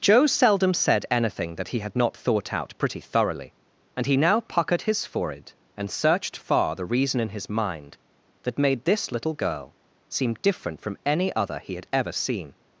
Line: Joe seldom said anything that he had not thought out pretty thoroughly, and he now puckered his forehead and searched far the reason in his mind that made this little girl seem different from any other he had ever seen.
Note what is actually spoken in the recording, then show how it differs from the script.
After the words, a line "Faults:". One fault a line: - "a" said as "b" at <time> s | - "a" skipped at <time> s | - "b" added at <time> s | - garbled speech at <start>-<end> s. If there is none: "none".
Joe seldom said anything that he had not thought out pretty thoroughly, and he now puckered his forehead and searched far the reason in his mind that made this little girl seem different from any other he had ever seen.
Faults:
none